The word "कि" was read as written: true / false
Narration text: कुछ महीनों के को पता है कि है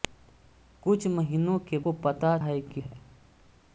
true